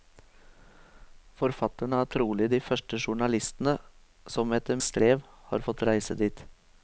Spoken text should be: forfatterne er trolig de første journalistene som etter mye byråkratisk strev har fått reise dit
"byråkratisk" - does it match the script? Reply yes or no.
no